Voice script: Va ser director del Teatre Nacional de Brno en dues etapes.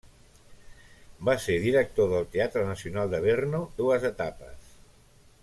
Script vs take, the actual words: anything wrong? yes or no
yes